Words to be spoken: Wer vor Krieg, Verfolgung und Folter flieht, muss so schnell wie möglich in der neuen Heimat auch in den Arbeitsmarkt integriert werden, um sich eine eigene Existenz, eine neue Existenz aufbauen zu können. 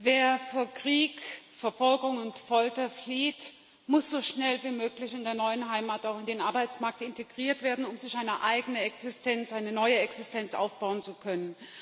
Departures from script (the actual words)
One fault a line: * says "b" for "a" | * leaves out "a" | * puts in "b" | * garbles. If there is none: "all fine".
all fine